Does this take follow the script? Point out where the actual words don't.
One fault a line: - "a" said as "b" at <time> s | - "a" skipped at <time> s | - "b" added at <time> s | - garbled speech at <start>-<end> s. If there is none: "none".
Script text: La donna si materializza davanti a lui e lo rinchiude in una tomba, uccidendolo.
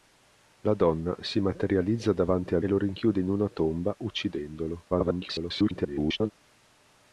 - "lui" skipped at 2.6 s
- garbled speech at 4.9-6.3 s